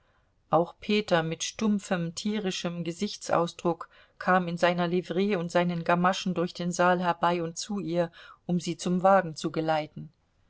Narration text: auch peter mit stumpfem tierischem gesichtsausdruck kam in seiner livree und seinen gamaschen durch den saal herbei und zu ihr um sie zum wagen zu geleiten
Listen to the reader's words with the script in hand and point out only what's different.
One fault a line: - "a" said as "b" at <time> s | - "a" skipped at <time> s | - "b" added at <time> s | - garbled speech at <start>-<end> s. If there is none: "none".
none